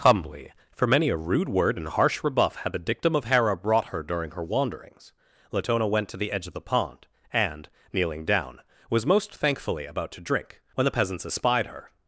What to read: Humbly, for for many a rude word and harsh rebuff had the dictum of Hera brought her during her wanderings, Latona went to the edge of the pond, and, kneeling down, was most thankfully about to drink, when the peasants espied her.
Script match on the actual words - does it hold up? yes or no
no